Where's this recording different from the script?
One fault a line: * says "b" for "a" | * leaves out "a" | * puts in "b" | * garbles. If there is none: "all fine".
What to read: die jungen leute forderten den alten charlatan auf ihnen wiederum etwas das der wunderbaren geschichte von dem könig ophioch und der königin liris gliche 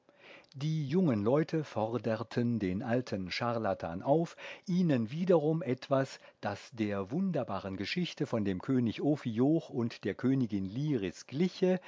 all fine